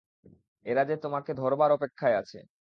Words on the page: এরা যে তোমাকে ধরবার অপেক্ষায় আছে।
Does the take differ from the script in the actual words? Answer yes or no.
no